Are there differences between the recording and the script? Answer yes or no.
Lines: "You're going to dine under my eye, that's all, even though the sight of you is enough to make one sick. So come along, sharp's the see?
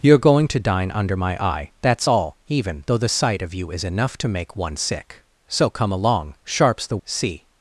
no